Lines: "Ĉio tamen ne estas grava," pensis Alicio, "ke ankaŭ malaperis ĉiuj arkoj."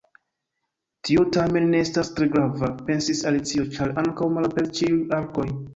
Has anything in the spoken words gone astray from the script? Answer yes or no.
yes